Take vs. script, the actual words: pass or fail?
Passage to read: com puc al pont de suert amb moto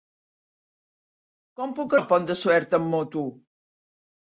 pass